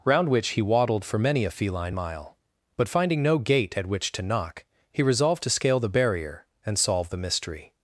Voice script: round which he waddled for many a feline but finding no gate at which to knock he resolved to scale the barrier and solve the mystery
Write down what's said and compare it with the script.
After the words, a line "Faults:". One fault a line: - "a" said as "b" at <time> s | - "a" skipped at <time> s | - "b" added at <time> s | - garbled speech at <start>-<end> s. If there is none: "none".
round which he waddled for many a feline mile but finding no gate at which to knock he resolved to scale the barrier and solve the mystery
Faults:
- "mile" added at 1.9 s